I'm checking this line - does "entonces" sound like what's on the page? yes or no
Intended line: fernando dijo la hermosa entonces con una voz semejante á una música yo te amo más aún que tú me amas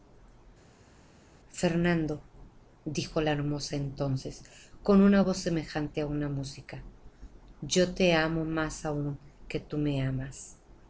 yes